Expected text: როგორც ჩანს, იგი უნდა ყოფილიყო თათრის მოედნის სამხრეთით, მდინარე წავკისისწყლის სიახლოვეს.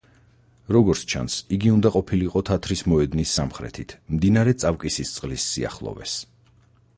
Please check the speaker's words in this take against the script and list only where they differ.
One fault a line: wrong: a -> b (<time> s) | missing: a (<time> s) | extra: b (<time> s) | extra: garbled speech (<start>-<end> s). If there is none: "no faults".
no faults